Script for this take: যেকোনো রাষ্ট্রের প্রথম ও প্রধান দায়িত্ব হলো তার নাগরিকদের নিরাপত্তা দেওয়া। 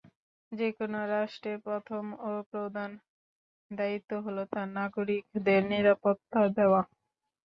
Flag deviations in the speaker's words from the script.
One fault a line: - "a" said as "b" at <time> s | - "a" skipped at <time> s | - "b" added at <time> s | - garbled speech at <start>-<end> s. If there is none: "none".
none